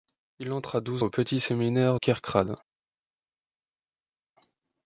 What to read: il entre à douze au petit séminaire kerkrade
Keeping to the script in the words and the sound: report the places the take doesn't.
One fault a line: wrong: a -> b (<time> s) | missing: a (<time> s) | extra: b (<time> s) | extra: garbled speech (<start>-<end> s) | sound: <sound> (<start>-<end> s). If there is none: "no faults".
no faults